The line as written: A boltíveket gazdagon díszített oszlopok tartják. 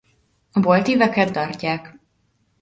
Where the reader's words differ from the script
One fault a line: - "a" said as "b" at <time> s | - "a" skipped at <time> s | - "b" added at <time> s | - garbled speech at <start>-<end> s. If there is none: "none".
- "gazdagon díszített oszlopok" skipped at 1.3 s